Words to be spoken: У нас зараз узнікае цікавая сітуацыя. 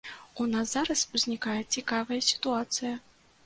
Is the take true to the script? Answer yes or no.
yes